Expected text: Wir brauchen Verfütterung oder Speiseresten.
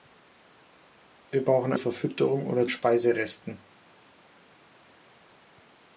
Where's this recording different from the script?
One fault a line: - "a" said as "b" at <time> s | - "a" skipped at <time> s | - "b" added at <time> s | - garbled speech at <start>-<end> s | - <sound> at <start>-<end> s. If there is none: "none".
none